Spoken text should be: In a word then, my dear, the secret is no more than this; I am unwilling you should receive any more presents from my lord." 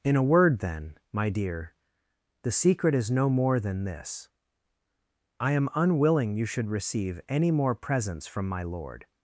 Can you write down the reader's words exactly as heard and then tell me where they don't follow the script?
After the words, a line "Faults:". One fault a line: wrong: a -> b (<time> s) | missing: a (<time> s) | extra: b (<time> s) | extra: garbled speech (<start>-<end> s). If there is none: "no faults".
In a word then, my dear, the secret is no more than this; I am unwilling you should receive any more presents from my lord."
Faults:
no faults